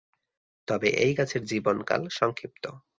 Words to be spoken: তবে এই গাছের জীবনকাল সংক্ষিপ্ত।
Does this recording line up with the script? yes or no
yes